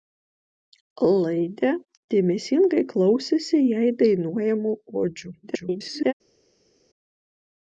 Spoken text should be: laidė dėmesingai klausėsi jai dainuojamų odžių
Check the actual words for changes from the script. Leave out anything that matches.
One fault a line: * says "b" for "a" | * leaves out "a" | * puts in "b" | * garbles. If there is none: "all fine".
* garbles